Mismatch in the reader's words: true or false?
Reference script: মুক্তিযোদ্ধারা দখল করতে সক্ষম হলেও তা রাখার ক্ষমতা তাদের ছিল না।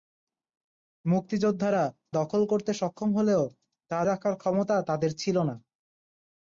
false